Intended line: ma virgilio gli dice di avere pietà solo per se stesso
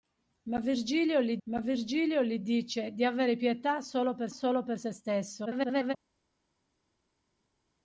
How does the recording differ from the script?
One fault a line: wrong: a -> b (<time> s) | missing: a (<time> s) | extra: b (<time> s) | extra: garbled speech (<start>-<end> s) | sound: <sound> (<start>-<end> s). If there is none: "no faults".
extra: ma virgilio gli (1.4 s)
extra: solo per (4.3 s)
extra: garbled speech (5.5-5.9 s)